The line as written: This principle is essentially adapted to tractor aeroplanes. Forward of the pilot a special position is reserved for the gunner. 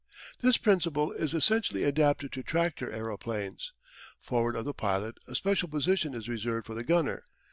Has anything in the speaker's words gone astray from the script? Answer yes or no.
no